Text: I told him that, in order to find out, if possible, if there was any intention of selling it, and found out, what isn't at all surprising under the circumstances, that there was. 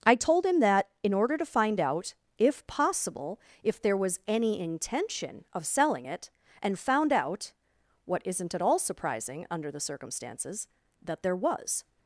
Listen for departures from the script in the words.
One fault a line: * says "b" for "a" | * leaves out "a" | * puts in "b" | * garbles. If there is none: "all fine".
all fine